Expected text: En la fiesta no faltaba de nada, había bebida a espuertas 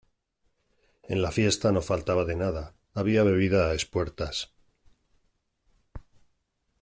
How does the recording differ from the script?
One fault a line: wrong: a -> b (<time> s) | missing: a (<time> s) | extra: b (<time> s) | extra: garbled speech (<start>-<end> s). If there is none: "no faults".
no faults